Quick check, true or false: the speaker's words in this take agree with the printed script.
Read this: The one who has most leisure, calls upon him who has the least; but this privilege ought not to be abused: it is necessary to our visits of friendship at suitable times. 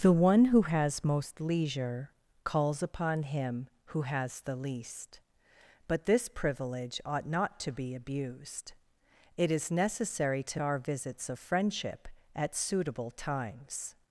true